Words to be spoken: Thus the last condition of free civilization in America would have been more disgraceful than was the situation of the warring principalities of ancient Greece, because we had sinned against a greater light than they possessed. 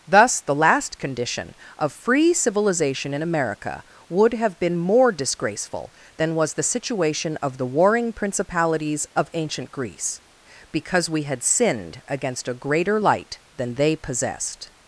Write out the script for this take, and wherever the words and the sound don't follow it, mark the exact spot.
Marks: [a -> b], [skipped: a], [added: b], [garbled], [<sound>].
Thus the last condition of free civilization in America would have been more disgraceful than was the situation of the warring principalities of ancient Greece, because we had sinned against a greater light than they possessed.